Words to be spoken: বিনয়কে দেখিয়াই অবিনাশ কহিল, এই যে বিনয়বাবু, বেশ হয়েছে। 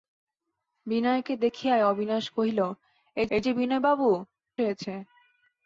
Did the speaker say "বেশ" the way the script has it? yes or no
no